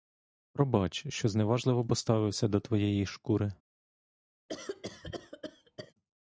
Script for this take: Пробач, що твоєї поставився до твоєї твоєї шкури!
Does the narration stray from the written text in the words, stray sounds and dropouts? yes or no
yes